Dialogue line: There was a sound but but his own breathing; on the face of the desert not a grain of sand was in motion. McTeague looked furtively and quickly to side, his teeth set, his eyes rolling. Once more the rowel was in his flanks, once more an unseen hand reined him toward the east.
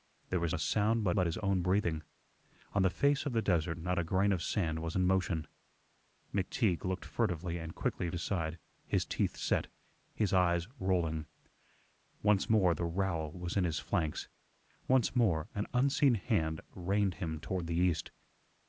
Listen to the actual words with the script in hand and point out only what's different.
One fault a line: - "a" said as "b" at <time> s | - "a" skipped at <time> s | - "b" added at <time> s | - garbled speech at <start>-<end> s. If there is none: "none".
none